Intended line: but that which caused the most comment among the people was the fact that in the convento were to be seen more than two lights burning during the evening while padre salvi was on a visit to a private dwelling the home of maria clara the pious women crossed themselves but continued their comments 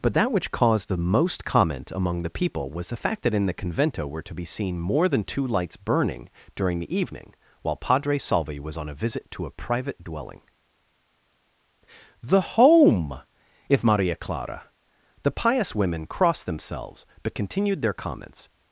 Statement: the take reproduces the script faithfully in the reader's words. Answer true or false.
false